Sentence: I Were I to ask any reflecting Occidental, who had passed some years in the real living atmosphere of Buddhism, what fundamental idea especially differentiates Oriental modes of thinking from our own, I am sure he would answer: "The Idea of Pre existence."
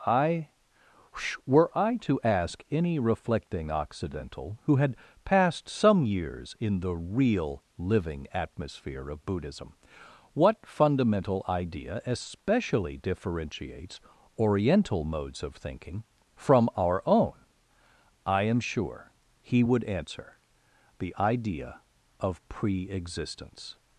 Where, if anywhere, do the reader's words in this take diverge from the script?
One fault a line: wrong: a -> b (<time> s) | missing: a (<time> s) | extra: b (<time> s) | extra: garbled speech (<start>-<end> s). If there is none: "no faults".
no faults